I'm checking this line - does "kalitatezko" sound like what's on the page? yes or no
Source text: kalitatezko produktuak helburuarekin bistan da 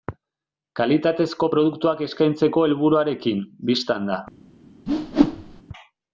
yes